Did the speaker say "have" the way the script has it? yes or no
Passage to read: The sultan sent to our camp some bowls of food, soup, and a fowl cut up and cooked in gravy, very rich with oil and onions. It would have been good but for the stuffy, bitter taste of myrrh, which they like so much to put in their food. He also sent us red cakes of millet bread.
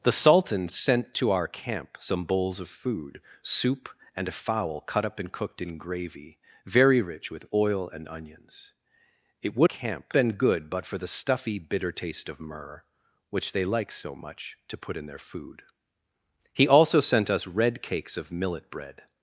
no